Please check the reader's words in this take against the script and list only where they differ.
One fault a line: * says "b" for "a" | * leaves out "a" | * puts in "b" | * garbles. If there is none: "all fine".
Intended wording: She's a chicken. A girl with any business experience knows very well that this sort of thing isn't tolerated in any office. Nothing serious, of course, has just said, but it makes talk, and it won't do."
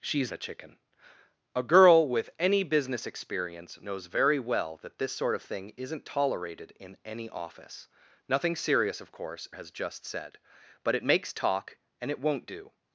all fine